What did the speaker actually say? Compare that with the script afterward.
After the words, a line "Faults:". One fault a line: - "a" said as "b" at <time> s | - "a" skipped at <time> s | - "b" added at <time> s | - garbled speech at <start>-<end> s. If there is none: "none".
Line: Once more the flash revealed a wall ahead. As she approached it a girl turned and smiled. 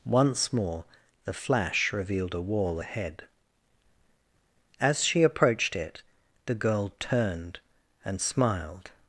Once more the flash revealed a wall ahead. As she approached it the girl turned and smiled.
Faults:
- "a" said as "the" at 6.5 s